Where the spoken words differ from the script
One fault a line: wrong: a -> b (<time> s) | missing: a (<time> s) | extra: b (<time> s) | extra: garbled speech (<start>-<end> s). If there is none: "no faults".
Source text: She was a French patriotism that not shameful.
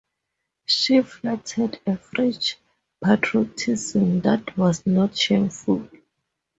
wrong: was -> flattered (1.0 s)
extra: was (4.6 s)